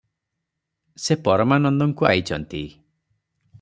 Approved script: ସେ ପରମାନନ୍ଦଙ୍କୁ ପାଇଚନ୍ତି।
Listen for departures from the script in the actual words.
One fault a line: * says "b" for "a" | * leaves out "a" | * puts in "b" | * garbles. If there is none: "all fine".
all fine